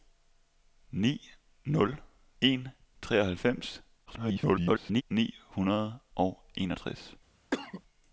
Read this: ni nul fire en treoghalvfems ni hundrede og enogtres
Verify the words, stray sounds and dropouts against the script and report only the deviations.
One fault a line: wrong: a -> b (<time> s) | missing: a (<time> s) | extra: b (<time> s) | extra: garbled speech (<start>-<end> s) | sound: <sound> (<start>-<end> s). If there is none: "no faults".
missing: fire (2.0 s)
extra: garbled speech (4.1-5.0 s)
sound: cough (7.5-7.8 s)